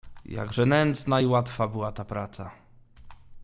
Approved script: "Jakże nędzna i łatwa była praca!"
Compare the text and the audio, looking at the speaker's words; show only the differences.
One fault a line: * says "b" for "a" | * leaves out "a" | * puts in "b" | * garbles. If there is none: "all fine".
* puts in "ta"